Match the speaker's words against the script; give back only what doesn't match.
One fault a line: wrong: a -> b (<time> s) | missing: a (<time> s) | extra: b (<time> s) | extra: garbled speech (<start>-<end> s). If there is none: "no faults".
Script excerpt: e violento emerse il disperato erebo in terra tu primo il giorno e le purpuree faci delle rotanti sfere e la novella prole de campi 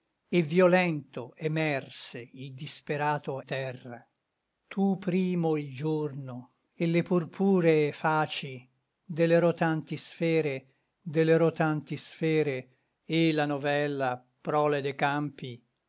missing: erebo in (3.4 s)
extra: delle rotanti sfere (11.0 s)